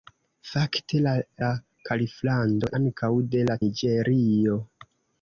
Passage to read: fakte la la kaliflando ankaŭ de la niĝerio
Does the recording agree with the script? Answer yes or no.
yes